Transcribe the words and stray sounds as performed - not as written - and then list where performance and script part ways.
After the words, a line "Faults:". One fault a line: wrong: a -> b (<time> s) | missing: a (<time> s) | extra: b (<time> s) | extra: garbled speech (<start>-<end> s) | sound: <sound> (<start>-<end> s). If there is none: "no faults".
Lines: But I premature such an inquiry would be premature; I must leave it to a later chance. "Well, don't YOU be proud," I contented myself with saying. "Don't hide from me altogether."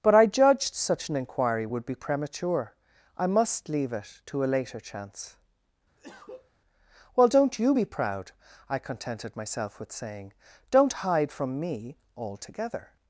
But I judged such an inquiry would be premature; I must leave it to a later chance. "Well, don't YOU be proud," I contented myself with saying. "Don't hide from me altogether."
Faults:
wrong: premature -> judged (0.2 s)
sound: cough (6.0-6.5 s)